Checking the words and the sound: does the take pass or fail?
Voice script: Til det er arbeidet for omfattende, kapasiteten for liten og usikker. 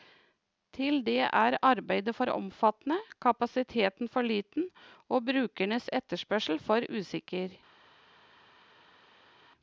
fail